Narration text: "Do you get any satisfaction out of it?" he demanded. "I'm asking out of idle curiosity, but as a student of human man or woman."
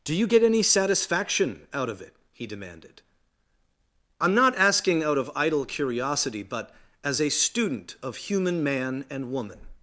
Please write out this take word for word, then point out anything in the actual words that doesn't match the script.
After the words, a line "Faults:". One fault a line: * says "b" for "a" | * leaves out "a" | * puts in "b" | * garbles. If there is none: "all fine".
"Do you get any satisfaction out of it?" he demanded. "I'm not asking out of idle curiosity, but as a student of human man and woman."
Faults:
* puts in "not"
* says "and" for "or"